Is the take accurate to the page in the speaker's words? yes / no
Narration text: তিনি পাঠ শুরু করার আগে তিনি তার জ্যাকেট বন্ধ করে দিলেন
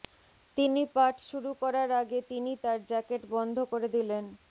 yes